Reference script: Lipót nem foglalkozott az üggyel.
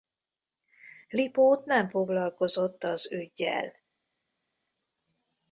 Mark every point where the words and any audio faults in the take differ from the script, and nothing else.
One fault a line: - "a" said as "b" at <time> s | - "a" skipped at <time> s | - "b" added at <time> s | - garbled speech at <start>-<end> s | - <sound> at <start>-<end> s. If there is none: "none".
none